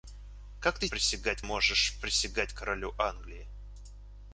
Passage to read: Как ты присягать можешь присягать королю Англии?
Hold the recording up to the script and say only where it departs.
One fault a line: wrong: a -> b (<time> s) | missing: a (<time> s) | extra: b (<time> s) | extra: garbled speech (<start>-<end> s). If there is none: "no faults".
no faults